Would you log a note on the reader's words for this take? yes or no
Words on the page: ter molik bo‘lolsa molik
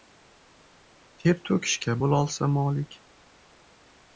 yes